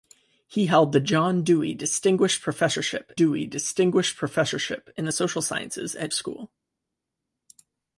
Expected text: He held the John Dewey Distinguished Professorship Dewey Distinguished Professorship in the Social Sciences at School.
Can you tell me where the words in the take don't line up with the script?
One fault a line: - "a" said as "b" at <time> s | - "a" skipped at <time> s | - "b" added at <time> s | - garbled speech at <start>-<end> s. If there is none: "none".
none